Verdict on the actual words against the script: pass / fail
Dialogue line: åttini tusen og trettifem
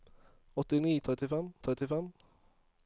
fail